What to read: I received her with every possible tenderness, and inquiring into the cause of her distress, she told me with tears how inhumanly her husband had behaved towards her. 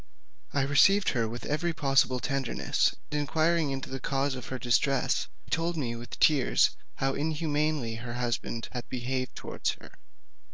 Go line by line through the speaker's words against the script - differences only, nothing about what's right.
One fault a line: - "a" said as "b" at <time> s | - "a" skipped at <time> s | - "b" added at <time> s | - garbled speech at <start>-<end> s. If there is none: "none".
- "and" skipped at 3.0 s
- "she" skipped at 5.3 s